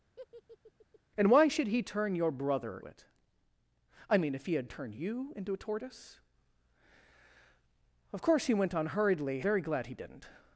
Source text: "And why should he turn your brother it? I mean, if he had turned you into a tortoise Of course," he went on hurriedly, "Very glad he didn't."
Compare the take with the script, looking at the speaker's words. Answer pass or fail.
pass